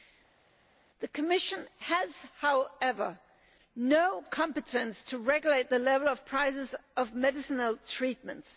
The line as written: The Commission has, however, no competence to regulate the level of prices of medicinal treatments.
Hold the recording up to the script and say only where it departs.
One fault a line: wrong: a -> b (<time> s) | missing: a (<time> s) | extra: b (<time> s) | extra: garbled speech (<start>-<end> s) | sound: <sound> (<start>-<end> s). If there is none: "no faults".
no faults